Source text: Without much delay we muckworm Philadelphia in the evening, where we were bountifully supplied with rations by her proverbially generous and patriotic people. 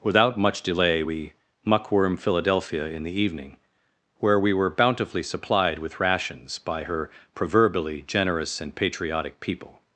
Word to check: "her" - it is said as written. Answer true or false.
true